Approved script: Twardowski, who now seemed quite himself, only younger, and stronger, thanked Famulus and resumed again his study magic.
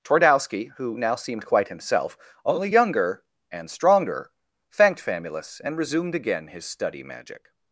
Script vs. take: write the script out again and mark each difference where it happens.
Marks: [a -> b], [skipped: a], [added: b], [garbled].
Twardowski, who now seemed quite himself, only younger, and stronger, thanked Famulus and resumed again his study magic.